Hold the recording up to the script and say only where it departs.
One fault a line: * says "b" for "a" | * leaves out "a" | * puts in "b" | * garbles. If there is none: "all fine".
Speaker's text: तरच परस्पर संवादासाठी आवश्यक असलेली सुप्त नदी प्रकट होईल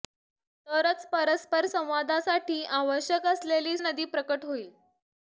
* leaves out "सुप्त"